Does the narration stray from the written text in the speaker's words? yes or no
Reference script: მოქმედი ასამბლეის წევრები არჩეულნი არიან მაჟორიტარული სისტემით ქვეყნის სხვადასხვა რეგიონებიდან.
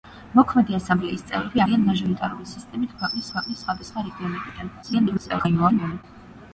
yes